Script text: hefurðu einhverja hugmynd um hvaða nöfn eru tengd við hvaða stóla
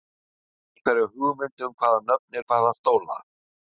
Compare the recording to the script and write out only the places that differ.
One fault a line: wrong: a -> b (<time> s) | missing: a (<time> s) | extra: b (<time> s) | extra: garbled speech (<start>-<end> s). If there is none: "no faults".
missing: eru tengd við (2.4 s)